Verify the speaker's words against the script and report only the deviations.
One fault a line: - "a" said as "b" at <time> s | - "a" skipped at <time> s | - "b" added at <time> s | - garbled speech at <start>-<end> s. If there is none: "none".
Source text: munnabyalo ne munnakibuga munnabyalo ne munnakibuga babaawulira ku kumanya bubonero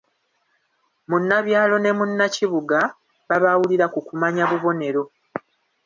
- "munnabyalo ne munnakibuga" skipped at 2.8 s